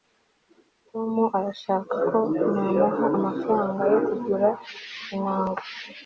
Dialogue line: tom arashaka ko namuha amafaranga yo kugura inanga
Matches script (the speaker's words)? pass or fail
pass